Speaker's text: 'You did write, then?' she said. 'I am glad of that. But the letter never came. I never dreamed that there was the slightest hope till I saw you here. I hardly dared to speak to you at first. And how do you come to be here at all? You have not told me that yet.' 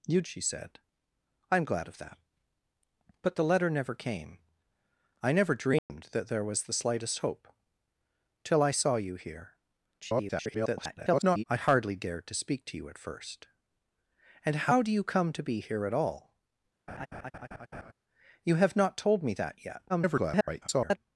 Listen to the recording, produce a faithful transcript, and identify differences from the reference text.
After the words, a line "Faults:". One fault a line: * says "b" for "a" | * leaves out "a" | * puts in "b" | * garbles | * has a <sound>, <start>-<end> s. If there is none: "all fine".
'You?' she said. 'I am glad of that. But the letter never came. I never dreamed that there was the slightest hope till I saw you here. [garbled] I hardly dared to speak to you at first. And how do you come to be here at all? You have not told me that yet.' [garbled]
Faults:
* leaves out "did write then"
* has a dropout, 5.8-5.9 s
* garbles
* has a laugh, 16.9-17.9 s
* garbles